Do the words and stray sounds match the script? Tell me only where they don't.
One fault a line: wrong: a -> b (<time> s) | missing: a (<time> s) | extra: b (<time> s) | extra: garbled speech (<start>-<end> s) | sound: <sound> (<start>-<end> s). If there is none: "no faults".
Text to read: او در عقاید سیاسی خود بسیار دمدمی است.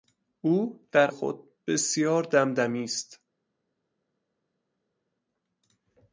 missing: عقاید سیاسی (1.1 s)